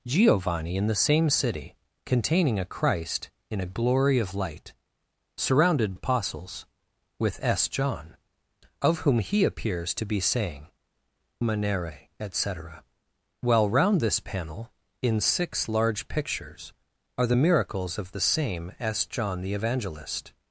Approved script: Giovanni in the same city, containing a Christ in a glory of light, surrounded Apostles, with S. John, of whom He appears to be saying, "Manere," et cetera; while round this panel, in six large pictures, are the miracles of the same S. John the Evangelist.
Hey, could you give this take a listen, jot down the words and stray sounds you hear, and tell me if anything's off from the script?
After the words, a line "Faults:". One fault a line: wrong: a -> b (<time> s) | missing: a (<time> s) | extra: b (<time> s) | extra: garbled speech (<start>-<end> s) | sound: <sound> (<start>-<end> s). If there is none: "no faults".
Giovanni in the same city, containing a Christ in a glory of light, surrounded Apostles, with S. John, of whom He appears to be saying, "Manere," et cetera; while round this panel, in six large pictures, are the miracles of the same S. John the Evangelist.
Faults:
no faults